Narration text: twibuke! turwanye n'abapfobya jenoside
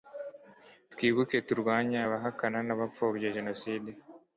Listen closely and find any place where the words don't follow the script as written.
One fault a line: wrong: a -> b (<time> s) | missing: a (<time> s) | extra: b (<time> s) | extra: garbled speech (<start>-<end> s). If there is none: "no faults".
extra: abahakana (2.1 s)